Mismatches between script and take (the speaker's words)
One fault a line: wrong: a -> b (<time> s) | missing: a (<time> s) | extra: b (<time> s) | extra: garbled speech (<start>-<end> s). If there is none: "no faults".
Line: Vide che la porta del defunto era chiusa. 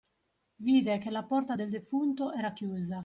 no faults